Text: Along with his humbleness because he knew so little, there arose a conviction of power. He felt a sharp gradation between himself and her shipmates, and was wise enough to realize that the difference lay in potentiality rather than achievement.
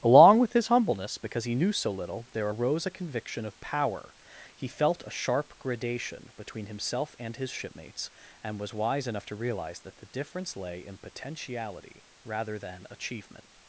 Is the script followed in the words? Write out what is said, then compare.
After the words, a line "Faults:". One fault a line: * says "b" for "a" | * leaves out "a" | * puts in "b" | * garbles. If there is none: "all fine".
Along with his humbleness because he knew so little, there arose a conviction of power. He felt a sharp gradation between himself and his shipmates, and was wise enough to realize that the difference lay in potentiality rather than achievement.
Faults:
* says "his" for "her"